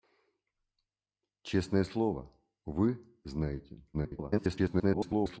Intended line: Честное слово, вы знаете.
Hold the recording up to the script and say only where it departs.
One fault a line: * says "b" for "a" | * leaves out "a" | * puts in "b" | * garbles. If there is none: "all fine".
* garbles